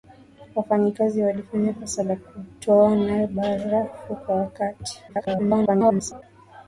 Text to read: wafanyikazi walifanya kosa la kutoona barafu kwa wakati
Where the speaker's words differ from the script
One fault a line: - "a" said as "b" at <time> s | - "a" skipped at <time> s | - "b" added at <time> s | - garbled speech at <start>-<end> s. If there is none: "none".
- garbled speech at 5.1-6.2 s